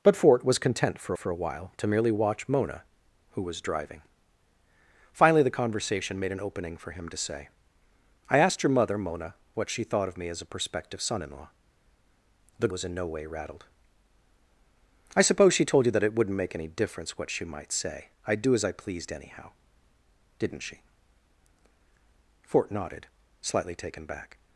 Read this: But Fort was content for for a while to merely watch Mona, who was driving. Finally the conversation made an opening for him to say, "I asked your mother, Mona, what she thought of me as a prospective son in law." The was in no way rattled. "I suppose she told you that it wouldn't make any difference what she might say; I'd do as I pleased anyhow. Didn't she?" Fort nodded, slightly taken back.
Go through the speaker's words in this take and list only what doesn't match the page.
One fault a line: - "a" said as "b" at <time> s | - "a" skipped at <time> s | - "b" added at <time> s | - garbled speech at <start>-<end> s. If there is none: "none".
none